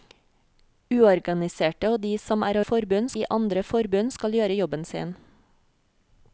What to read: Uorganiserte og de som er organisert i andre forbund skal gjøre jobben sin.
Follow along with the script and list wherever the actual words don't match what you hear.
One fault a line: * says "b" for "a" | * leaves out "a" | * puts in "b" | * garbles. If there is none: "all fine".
* says "forbund" for "organisert"